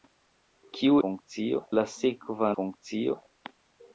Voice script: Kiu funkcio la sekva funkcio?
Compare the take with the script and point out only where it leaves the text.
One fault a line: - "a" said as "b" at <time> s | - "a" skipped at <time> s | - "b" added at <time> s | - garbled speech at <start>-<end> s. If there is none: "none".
none